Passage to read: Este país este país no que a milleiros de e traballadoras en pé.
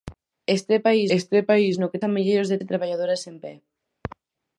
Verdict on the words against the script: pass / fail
pass